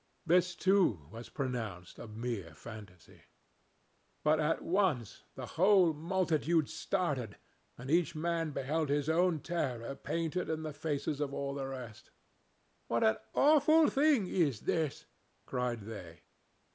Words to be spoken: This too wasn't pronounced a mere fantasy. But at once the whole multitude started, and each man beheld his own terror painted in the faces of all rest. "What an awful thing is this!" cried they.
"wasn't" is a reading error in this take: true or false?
true